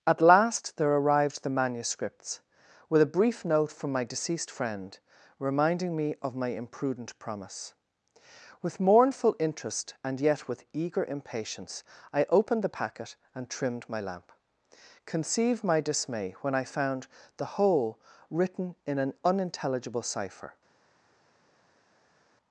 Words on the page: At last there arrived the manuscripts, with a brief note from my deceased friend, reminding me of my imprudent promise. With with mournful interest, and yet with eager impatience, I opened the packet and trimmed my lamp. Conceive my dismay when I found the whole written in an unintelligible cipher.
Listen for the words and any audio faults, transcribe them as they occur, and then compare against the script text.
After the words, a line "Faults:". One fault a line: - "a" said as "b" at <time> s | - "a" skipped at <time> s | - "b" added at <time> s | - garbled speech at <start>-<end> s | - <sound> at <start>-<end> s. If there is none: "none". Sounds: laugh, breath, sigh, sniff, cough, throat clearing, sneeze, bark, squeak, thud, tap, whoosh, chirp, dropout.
At last there arrived the manuscripts, with a brief note from my deceased friend, reminding me of my imprudent promise. With mournful interest, and yet with eager impatience, I opened the packet and trimmed my lamp. Conceive my dismay when I found the whole written in an unintelligible cipher.
Faults:
- "with" skipped at 8.8 s